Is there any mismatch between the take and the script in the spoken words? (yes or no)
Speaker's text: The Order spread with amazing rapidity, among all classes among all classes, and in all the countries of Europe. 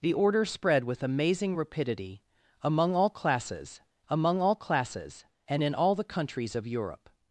no